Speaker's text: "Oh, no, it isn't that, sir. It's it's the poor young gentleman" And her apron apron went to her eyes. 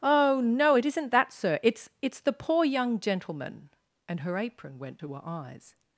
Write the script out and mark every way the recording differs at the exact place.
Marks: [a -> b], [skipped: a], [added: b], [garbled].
"Oh, no, it isn't that, sir. It's it's the poor young gentleman" And her apron [skipped: apron] went to her eyes.